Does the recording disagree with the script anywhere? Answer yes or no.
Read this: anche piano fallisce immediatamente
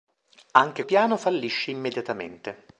no